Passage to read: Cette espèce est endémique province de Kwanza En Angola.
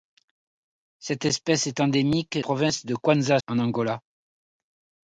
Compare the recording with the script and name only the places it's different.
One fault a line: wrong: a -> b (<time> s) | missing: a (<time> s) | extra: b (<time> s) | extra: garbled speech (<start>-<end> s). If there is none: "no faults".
no faults